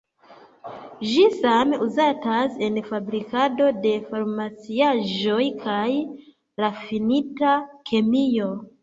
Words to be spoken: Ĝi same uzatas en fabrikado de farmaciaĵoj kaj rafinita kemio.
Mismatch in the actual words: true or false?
false